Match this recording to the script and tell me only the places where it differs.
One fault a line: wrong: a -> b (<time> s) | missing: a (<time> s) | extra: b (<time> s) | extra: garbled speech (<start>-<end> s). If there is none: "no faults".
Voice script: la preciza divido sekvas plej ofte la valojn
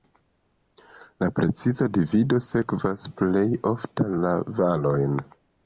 no faults